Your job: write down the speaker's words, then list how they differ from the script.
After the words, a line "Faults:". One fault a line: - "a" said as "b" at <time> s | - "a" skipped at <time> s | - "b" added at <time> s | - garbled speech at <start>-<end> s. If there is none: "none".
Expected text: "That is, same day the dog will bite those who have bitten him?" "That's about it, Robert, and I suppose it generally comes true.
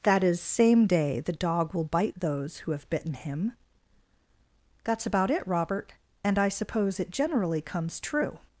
"That is, same day the dog will bite those who have bitten him?" "That's about it, Robert, and I suppose it generally comes true.
Faults:
none